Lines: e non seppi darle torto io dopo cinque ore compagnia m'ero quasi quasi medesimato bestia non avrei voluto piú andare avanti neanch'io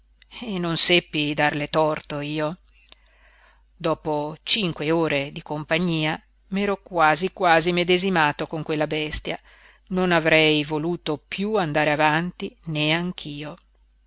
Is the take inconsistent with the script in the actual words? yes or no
yes